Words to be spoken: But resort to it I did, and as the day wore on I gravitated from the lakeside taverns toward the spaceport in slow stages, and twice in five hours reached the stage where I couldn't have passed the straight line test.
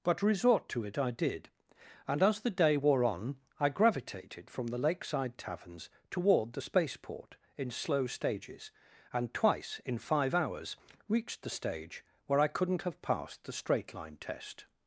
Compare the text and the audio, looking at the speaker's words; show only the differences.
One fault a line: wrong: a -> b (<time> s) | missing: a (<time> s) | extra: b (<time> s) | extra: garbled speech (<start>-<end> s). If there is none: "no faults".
no faults